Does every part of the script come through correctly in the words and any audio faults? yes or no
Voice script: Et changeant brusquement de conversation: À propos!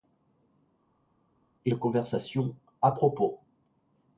no